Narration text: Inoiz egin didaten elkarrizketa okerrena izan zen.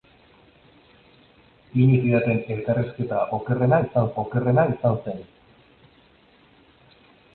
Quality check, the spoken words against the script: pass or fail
fail